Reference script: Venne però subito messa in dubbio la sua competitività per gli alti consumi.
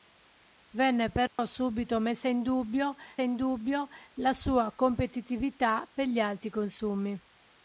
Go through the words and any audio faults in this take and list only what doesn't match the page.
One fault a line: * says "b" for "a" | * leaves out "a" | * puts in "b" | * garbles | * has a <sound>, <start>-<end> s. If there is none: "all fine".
* has a dropout, 1.3-1.4 s
* puts in "in dubbio"